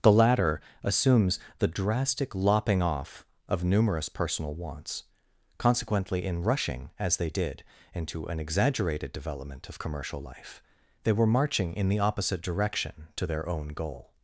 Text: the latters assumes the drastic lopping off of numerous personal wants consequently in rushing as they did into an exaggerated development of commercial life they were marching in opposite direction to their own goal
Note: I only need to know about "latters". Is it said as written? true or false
false